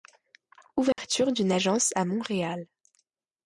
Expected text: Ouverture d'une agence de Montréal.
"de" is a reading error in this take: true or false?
true